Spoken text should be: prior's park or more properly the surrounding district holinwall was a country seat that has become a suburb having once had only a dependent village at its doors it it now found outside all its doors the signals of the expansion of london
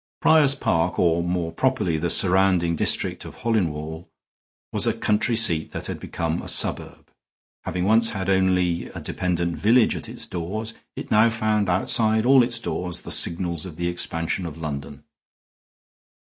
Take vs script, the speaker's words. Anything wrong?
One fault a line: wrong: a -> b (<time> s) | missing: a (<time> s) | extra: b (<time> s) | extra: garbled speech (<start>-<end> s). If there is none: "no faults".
extra: of (3.2 s)
wrong: has -> had (5.9 s)
missing: it (11.1 s)